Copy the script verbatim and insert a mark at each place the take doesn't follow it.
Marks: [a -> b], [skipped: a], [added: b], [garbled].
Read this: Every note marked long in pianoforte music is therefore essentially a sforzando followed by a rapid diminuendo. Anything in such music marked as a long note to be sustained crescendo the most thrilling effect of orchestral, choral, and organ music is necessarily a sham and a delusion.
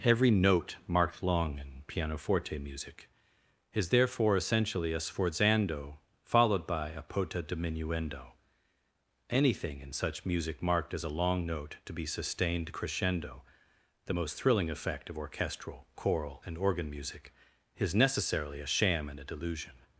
Every note marked long in pianoforte music is therefore essentially a sforzando followed by a [rapid -> pota] diminuendo. Anything in such music marked as a long note to be sustained crescendo the most thrilling effect of orchestral, choral, and organ music is necessarily a sham and a delusion.